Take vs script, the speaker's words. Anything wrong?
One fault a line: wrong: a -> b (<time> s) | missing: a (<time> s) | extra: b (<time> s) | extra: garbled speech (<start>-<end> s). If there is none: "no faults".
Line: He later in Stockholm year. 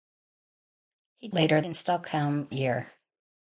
no faults